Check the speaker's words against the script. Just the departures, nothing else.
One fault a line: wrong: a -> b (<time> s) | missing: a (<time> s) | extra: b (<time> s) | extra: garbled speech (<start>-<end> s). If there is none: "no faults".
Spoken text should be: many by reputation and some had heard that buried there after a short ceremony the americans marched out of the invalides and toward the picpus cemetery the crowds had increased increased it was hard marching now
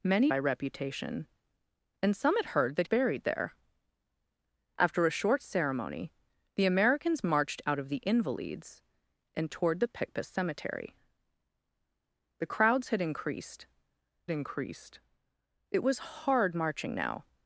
no faults